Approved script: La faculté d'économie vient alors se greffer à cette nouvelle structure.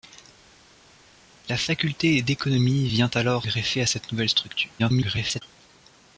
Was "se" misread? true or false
true